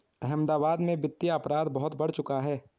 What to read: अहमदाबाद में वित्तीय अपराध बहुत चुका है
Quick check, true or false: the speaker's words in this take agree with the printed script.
false